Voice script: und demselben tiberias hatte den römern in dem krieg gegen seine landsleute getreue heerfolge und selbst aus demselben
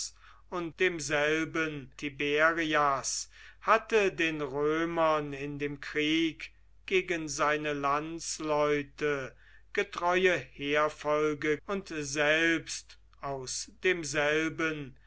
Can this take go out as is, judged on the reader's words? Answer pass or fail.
pass